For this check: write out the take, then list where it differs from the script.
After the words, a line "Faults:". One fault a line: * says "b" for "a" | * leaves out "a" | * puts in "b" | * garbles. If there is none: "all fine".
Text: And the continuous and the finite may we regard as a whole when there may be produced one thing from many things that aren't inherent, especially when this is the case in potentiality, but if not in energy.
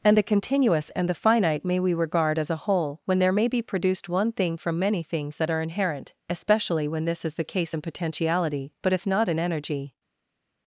And the continuous and the finite may we regard as a whole when there may be produced one thing from many things that are inherent, especially when this is the case in potentiality, but if not in energy.
Faults:
* says "are" for "aren't"